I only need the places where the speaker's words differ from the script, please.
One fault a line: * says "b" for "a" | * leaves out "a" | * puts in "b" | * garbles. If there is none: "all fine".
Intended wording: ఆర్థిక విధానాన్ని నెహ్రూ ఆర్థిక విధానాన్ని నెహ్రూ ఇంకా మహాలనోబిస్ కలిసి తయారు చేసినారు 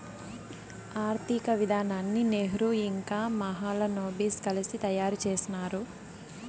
* leaves out "ఆర్థిక విధానాన్ని నెహ్రూ"